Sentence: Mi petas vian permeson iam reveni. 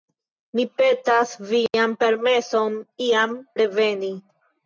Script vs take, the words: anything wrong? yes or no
no